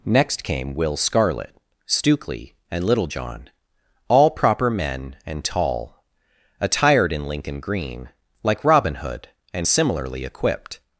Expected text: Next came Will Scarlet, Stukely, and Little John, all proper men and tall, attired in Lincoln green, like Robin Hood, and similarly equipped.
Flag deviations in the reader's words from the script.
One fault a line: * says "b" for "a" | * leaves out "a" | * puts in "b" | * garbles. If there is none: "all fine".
all fine